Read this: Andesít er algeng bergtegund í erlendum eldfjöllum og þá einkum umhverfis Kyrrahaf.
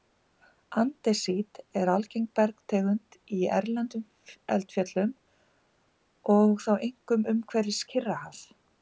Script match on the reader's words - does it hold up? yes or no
yes